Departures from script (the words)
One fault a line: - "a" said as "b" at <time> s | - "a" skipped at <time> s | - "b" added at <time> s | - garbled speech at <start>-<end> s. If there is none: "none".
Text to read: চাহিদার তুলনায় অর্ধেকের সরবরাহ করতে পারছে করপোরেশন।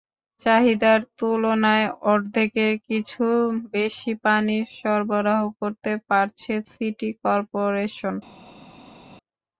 - "কিছু বেশি পানি" added at 2.9 s
- "সিটি" added at 6.7 s